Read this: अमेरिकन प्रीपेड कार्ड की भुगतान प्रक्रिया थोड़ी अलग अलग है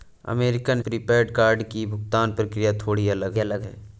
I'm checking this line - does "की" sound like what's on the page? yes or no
yes